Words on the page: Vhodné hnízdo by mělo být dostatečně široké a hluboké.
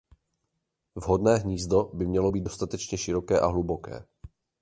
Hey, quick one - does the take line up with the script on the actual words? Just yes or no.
yes